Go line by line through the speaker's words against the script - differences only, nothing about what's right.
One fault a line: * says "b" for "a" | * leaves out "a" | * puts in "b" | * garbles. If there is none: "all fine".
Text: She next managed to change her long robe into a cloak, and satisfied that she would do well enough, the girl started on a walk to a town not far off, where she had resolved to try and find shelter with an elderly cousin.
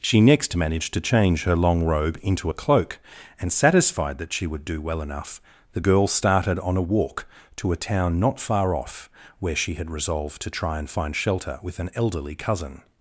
all fine